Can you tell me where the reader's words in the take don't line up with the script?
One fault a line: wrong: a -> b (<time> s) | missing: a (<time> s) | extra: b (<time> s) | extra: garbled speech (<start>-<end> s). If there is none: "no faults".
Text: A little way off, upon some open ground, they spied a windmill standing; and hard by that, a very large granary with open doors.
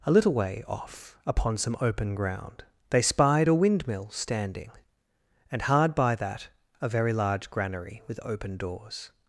no faults